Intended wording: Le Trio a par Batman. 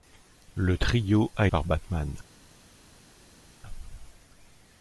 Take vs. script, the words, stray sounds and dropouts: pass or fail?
pass